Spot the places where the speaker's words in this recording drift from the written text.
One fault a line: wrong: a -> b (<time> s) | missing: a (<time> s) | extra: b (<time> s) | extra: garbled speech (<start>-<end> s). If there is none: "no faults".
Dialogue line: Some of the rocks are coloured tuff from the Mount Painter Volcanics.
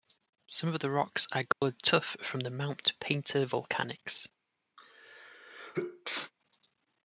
no faults